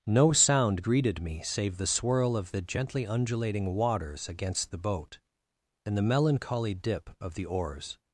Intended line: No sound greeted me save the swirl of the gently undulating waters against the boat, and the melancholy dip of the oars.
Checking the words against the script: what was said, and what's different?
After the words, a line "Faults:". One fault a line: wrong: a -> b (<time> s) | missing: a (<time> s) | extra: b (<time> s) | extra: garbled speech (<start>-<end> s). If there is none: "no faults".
No sound greeted me save the swirl of the gently undulating waters against the boat, and the melancholy dip of the oars.
Faults:
no faults